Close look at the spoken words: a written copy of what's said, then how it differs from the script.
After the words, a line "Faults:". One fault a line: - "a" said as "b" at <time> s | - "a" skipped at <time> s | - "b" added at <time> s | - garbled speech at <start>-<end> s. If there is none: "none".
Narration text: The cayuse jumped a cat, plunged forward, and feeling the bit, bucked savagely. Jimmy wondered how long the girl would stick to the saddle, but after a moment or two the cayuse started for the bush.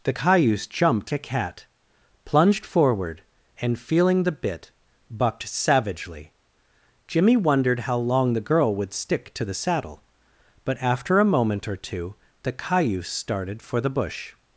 The cayuse jumped a cat, plunged forward, and feeling the bit, bucked savagely. Jimmy wondered how long the girl would stick to the saddle, but after a moment or two the cayuse started for the bush.
Faults:
none